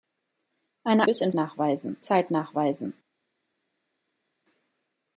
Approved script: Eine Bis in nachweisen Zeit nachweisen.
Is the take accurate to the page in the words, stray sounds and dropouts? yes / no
yes